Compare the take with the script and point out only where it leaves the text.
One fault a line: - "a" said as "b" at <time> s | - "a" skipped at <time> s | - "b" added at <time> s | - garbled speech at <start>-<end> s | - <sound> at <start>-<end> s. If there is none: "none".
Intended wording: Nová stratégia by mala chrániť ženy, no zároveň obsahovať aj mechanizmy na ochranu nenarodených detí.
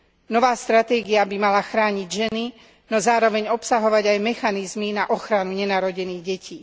- dropout at 2.3-2.3 s